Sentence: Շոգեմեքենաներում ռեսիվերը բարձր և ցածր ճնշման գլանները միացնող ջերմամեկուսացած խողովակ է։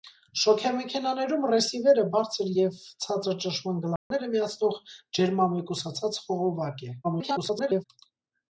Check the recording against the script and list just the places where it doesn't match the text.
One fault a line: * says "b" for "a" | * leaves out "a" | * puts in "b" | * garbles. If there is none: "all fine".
* garbles